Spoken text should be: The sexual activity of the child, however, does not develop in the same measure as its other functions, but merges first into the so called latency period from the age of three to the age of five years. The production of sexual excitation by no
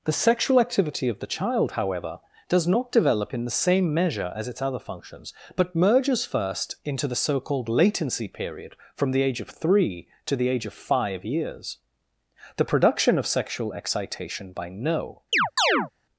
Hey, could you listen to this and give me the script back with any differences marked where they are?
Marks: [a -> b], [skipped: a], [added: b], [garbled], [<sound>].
The sexual activity of the child, however, does not develop in the same measure as its other functions, but merges first into the so called latency period from the age of three to the age of five years. The production of sexual excitation by no [chirp]